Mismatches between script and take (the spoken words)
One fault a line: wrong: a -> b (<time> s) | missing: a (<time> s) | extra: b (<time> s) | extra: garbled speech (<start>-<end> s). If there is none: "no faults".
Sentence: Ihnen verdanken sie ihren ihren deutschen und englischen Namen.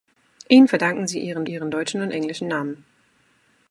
no faults